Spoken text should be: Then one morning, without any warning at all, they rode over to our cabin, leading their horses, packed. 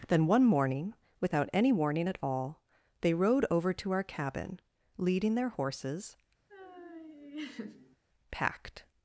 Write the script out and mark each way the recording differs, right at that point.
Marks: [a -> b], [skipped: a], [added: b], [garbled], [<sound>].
Then one morning, without any warning at all, they rode over to our cabin, leading their horses, [laugh] packed.